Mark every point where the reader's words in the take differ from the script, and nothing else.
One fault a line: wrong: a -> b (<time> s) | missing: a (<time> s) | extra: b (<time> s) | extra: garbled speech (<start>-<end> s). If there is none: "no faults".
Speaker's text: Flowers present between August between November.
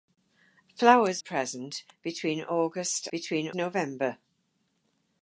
no faults